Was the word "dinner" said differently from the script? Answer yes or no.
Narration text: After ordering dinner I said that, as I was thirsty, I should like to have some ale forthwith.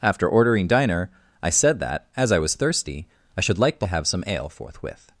yes